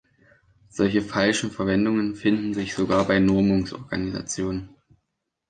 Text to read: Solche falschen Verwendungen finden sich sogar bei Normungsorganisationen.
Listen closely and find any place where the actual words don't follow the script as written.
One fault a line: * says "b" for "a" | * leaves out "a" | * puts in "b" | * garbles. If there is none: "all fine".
all fine